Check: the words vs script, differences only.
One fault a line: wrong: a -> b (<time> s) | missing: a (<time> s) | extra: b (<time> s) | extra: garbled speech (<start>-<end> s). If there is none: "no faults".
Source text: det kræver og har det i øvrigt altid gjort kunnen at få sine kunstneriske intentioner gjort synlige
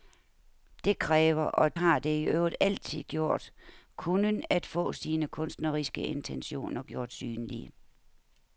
no faults